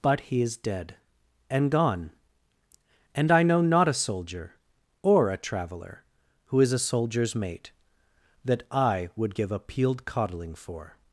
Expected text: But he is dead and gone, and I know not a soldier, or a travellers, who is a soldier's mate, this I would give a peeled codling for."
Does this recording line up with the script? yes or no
no